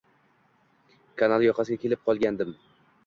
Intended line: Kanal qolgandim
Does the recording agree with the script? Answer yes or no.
no